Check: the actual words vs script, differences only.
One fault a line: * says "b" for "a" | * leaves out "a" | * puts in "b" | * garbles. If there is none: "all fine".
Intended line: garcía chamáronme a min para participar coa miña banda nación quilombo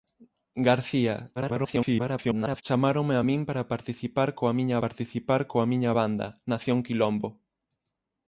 * garbles
* puts in "participar coa miña"